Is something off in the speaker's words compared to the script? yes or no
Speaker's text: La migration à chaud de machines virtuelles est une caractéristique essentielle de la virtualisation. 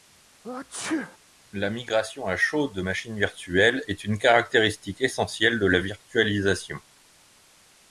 no